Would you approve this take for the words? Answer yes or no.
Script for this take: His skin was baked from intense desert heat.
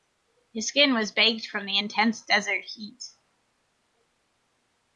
no